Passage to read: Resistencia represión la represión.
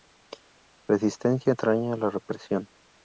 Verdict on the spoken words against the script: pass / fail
fail